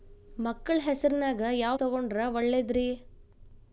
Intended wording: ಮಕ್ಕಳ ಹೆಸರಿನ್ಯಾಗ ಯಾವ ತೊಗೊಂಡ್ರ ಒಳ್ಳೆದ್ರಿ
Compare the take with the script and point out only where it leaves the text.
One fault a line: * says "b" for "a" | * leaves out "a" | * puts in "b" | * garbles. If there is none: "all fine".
all fine